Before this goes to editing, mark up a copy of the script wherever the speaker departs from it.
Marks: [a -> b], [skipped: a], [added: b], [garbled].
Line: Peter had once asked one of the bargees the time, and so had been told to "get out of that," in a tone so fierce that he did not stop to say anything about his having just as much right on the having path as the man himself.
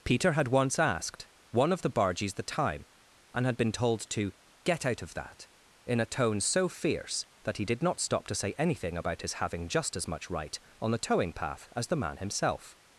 Peter had once asked one of the bargees the time, and [skipped: so] had been told to "get out of that," in a tone so fierce that he did not stop to say anything about his having just as much right on the [having -> towing] path as the man himself.